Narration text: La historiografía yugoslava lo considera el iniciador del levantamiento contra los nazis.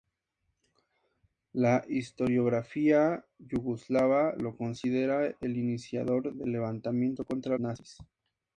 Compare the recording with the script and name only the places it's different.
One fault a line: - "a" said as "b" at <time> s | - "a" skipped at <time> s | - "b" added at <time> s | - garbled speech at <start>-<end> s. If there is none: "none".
- "los" skipped at 7.6 s